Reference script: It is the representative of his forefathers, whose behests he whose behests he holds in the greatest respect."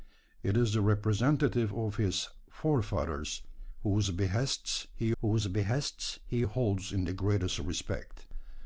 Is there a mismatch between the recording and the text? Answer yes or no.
no